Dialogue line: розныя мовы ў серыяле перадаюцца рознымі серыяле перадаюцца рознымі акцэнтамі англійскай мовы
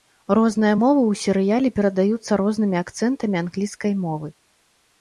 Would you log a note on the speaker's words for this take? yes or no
yes